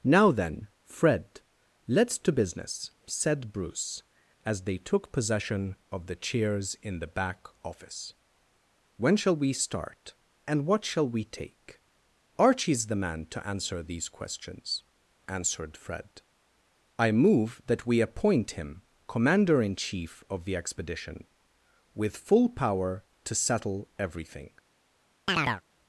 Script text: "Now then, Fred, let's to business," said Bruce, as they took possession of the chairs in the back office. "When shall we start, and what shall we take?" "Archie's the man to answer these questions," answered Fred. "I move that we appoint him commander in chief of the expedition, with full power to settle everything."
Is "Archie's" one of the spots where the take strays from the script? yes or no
no